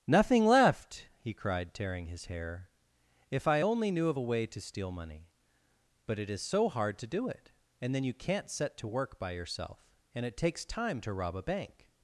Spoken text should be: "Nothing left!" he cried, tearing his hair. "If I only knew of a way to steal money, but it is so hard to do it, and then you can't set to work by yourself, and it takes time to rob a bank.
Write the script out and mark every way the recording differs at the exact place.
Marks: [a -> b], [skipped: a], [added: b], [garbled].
"Nothing left!" he cried, tearing his hair. "If I only knew of a way to steal money, but it is so hard to do it, and then you can't set to work by yourself, and it takes time to rob a bank.